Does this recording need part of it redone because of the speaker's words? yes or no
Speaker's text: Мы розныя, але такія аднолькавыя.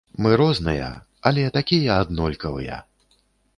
no